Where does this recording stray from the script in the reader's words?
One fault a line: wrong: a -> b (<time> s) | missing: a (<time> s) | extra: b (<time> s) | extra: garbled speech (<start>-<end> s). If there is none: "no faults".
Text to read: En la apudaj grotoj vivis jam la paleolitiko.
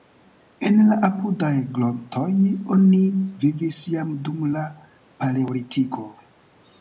extra: oni (2.8 s)
extra: dum (4.3 s)